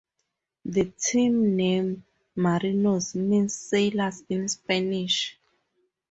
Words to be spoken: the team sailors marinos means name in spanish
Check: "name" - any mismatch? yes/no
yes